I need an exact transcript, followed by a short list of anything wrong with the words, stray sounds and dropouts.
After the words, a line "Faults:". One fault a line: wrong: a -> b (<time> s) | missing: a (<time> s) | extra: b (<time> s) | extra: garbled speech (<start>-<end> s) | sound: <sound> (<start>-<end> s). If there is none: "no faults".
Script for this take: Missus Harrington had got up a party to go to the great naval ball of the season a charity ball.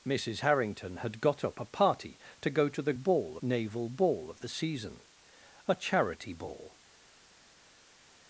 Missus Harrington had got up a party to go to the ball naval ball of the season a charity ball.
Faults:
wrong: great -> ball (2.9 s)